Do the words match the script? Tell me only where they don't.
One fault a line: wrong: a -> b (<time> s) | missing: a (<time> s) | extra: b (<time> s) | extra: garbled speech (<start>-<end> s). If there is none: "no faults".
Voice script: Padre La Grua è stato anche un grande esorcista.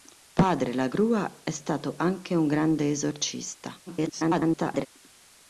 extra: garbled speech (3.9-4.9 s)